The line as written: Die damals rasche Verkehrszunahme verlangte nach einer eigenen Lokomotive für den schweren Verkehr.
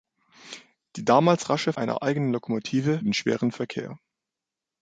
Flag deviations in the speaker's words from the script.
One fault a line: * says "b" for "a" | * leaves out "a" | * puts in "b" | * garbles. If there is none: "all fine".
* leaves out "Verkehrszunahme verlangte nach"
* leaves out "für"